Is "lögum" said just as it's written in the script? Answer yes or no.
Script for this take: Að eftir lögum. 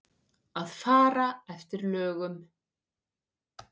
yes